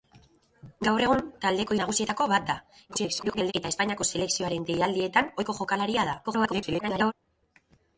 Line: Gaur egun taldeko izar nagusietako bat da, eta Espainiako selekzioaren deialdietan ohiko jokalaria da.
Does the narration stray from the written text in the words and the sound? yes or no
yes